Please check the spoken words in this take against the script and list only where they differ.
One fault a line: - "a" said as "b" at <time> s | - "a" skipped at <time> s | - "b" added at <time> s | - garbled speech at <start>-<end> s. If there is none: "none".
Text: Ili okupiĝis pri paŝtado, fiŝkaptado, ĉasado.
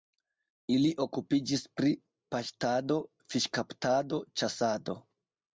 none